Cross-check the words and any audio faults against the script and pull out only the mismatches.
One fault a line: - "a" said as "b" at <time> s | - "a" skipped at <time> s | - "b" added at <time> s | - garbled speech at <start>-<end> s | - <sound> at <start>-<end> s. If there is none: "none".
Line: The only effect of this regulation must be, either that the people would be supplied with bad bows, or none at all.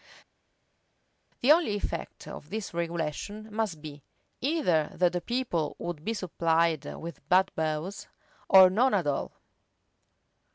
none